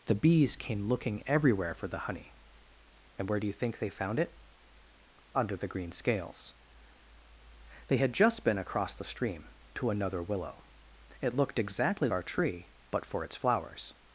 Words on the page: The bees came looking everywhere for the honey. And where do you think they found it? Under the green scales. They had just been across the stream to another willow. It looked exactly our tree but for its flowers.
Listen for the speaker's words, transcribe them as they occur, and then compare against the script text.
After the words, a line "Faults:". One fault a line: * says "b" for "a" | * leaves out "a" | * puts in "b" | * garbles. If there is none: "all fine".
The bees came looking everywhere for the honey. And where do you think they found it? Under the green scales. They had just been across the stream to another willow. It looked exactly our tree but for its flowers.
Faults:
all fine